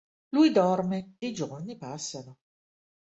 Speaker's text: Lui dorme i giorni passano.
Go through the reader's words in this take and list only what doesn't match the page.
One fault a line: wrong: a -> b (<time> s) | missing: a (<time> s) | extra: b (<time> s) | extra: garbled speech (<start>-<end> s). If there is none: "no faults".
no faults